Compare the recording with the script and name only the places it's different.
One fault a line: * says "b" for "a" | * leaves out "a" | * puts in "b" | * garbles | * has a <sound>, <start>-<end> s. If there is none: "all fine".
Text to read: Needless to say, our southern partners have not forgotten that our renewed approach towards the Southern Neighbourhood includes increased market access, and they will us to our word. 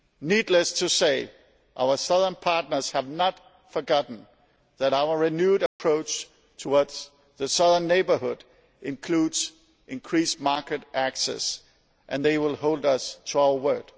* has a dropout, 5.7-5.8 s
* puts in "hold"